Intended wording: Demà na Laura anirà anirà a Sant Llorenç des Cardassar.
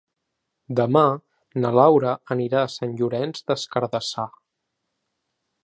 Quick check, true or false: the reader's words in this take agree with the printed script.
false